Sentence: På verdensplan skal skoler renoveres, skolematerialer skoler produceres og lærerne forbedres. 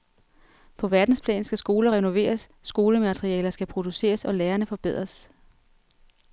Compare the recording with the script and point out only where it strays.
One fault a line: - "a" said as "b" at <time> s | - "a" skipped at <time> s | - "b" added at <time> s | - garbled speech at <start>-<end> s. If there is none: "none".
- "skoler" said as "skal" at 3.5 s